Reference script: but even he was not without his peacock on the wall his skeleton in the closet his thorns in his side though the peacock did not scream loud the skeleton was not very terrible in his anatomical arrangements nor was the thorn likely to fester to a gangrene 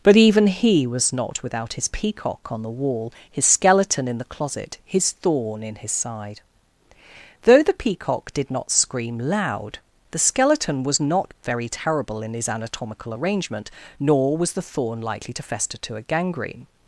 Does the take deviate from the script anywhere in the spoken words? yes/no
yes